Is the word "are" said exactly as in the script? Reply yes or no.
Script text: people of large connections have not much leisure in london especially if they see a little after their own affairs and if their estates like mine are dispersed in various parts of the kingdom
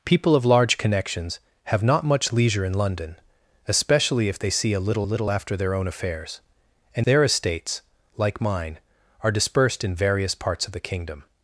yes